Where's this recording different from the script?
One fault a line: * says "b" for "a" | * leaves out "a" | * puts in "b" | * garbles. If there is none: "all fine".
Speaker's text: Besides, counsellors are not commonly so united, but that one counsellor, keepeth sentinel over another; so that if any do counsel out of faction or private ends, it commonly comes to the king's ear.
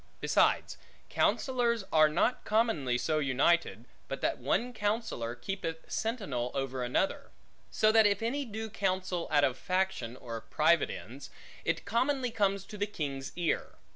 all fine